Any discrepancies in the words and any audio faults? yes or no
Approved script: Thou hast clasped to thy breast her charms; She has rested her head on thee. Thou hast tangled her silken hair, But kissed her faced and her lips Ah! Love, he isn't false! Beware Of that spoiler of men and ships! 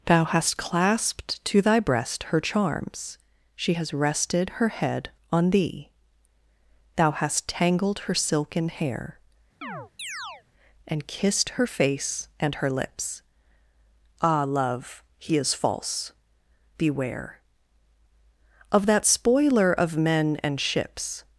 yes